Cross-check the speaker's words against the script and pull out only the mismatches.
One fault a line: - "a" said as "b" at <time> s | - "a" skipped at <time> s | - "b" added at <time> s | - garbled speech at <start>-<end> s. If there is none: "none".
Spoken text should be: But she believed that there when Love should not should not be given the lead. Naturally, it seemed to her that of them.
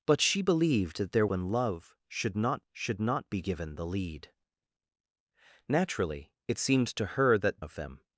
none